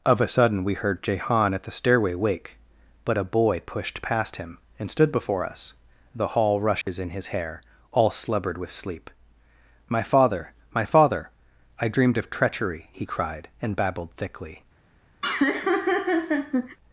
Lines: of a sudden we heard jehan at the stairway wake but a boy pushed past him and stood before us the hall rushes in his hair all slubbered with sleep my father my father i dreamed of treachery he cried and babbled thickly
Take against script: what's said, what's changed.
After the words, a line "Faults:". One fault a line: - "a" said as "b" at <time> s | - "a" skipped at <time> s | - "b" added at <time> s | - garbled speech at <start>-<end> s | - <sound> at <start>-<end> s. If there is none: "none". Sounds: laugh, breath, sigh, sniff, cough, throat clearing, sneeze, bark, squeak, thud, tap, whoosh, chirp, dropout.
of a sudden we heard jehan at the stairway wake but a boy pushed past him and stood before us the hall rushes in his hair all slubbered with sleep my father my father i dreamed of treachery he cried and babbled thickly
Faults:
- dropout at 6.8-6.9 s
- laugh at 15.2-16.8 s